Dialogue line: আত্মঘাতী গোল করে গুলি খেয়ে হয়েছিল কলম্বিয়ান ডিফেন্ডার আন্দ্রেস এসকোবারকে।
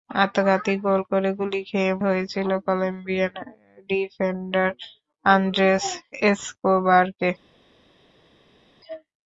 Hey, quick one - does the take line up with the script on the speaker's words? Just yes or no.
yes